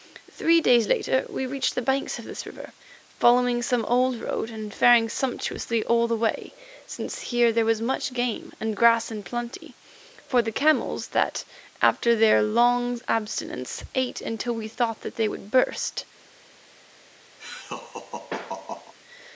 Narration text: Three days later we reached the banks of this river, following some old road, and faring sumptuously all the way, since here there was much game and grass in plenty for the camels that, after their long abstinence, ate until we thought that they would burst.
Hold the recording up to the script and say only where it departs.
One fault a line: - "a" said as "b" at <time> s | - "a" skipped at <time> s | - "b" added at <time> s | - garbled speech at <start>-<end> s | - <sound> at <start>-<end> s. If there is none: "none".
- laugh at 17.4-18.9 s